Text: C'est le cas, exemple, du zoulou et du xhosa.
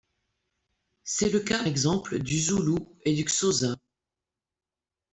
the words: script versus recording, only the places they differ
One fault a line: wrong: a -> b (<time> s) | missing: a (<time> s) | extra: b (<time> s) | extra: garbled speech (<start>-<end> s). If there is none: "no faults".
no faults